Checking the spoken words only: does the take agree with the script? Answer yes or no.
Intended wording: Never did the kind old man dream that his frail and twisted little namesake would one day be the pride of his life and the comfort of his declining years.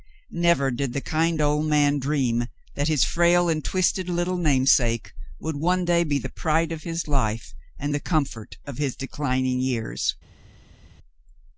yes